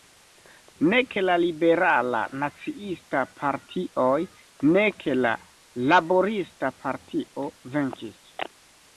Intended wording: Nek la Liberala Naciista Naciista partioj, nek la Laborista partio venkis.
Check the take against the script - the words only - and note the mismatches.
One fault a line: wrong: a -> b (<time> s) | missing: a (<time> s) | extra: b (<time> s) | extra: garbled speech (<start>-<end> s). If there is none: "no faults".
missing: Naciista (3.2 s)